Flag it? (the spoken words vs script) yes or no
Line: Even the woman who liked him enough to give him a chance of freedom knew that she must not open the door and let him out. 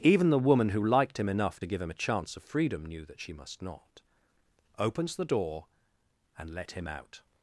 yes